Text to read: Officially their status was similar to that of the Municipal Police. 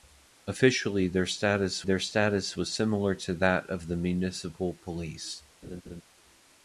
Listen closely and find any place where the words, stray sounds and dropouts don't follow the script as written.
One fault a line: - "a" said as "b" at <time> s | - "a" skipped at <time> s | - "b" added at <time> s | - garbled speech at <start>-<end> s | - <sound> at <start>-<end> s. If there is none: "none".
- "their status" added at 1.8 s
- laugh at 5.6-6.0 s